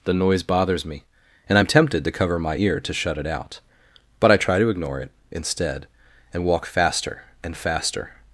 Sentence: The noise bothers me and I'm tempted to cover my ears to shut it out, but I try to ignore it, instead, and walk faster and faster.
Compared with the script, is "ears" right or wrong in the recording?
wrong